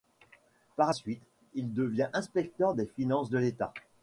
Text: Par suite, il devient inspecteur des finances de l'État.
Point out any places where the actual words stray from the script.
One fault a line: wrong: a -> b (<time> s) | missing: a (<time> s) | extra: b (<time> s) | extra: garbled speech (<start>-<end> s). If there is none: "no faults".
no faults